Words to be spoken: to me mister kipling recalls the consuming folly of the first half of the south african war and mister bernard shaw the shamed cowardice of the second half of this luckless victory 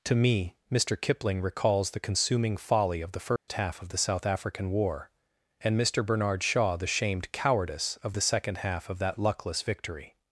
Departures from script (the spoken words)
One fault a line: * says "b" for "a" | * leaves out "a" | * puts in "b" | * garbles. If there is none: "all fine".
* says "that" for "this"